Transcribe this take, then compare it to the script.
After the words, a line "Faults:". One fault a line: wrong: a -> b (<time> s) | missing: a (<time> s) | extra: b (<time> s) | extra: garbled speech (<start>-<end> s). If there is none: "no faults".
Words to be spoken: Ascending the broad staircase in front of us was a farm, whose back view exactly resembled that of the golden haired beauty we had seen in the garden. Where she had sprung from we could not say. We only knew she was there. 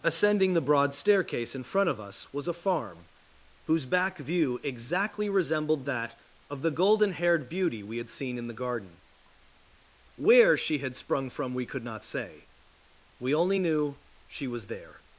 Ascending the broad staircase in front of us was a farm, whose back view exactly resembled that of the golden haired beauty we had seen in the garden. Where she had sprung from we could not say. We only knew she was there.
Faults:
no faults